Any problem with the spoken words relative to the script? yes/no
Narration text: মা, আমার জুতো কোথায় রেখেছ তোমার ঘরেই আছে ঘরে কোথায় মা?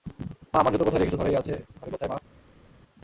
yes